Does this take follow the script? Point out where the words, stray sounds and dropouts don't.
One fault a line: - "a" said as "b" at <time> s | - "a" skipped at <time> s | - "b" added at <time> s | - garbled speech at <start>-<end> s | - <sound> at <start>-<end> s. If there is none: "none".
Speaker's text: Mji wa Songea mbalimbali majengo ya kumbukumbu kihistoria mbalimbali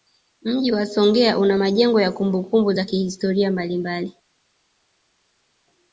- "mbalimbali" said as "una" at 1.4 s
- "za" added at 2.7 s